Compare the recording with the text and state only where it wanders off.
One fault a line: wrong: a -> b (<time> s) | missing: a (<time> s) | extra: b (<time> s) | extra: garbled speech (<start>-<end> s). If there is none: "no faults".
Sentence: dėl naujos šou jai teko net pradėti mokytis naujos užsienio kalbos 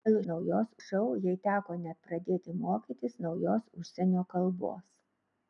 no faults